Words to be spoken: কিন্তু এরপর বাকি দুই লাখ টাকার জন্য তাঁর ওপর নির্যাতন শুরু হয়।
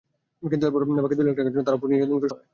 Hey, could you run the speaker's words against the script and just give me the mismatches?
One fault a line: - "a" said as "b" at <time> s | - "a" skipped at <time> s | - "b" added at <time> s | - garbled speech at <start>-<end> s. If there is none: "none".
- "শুরু" skipped at 2.3 s